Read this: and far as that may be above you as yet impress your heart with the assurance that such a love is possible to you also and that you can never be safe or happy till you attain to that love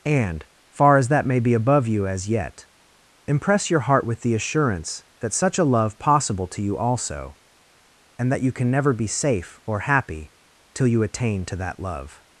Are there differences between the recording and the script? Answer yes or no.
yes